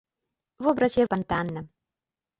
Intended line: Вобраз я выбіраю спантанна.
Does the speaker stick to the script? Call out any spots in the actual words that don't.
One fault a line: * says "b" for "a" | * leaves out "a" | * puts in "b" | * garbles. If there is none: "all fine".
* leaves out "выбіраю"